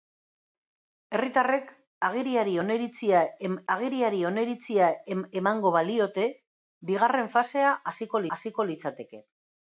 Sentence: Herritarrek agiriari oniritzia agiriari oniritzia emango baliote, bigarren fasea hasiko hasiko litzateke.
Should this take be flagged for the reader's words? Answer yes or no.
no